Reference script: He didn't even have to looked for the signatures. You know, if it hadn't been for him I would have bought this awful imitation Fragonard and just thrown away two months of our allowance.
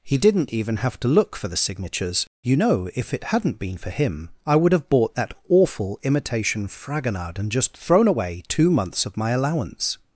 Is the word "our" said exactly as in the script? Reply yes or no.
no